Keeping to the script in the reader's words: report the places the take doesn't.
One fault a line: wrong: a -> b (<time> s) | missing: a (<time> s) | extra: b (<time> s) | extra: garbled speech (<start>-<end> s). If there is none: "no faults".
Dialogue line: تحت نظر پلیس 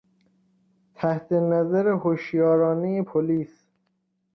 extra: هشیارانهی (2.0 s)